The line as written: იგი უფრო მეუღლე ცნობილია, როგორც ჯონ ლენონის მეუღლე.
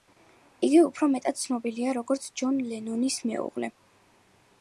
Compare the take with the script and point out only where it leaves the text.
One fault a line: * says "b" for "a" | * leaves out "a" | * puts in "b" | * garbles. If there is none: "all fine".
* says "მეტად" for "მეუღლე"